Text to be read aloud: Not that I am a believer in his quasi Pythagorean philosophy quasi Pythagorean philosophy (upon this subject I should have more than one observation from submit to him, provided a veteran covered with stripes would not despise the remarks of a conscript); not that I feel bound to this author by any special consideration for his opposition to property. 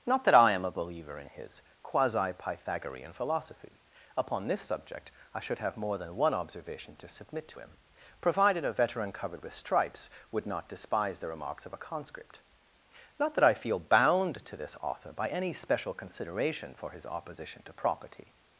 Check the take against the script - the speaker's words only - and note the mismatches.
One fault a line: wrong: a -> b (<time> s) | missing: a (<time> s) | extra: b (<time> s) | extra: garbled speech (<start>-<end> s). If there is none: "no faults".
missing: quasi Pythagorean philosophy (3.8 s)
wrong: from -> to (7.0 s)